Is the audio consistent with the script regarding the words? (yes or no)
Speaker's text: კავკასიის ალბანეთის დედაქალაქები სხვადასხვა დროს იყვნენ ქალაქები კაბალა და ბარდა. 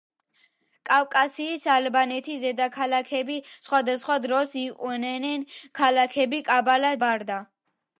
no